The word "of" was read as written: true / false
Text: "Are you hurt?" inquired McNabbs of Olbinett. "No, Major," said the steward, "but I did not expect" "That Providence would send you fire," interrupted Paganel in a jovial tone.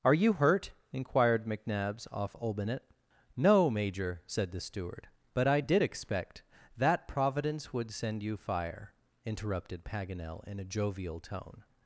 false